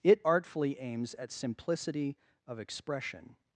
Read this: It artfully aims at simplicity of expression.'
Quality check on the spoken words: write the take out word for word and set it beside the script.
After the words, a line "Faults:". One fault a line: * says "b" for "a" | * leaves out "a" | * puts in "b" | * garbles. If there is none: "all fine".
It artfully aims at simplicity of expression.'
Faults:
all fine